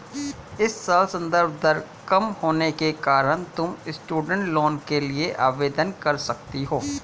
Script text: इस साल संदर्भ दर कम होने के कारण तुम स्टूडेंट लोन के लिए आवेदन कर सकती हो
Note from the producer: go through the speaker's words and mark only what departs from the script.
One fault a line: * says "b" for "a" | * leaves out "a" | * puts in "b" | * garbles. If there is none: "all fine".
all fine